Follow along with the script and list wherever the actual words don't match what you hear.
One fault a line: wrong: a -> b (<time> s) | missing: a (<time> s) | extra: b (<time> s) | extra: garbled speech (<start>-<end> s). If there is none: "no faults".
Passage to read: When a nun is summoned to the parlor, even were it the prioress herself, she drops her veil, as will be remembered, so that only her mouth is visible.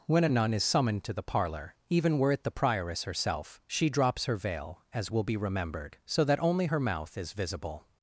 no faults